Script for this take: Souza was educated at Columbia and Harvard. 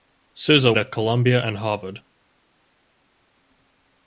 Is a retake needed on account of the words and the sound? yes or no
yes